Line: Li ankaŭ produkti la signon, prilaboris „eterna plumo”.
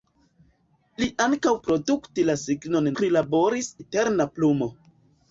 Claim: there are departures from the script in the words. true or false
false